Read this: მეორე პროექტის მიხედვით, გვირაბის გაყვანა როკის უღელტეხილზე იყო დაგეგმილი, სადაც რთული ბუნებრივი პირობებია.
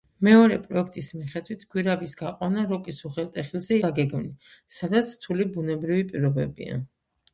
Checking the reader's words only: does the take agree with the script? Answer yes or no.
no